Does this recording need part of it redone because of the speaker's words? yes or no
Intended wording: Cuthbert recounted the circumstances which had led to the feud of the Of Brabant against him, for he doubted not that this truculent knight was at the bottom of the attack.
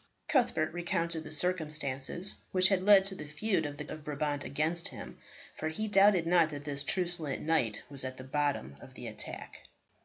no